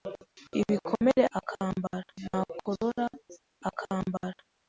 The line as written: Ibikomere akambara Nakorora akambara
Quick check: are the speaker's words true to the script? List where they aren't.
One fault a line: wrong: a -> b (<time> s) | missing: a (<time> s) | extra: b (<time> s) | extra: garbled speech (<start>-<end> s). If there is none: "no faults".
no faults